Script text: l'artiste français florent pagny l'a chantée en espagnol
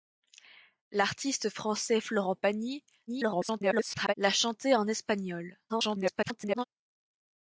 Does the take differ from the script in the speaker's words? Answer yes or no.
yes